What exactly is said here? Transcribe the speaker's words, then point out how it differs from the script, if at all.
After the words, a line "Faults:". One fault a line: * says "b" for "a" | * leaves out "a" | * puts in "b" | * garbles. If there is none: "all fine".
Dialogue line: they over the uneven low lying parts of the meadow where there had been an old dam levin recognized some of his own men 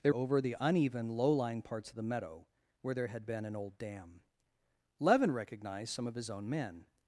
they over the uneven low lying parts of the meadow where there had been an old dam levin recognized some of his own men
Faults:
all fine